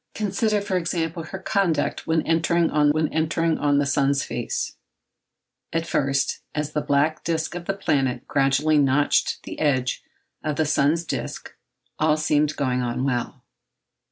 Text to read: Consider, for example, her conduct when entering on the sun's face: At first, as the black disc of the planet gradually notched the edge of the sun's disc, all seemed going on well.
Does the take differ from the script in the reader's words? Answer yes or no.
yes